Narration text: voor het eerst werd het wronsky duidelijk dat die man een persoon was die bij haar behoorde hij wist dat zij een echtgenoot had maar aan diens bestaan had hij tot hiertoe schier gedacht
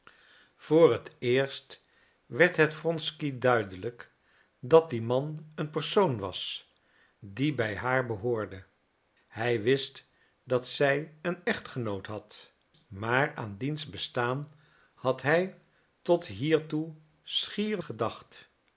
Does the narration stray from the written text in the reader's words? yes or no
no